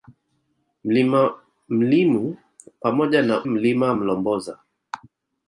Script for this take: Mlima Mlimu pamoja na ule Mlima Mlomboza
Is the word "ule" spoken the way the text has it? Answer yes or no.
no